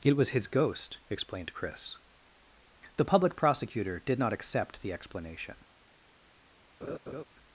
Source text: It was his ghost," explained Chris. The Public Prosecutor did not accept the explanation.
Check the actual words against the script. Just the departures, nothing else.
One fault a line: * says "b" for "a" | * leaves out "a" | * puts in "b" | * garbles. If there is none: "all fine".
all fine